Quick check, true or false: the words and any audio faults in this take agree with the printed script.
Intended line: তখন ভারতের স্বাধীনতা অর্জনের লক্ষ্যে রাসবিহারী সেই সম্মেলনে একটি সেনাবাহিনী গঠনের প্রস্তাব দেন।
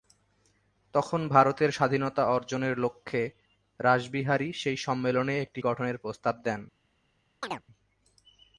false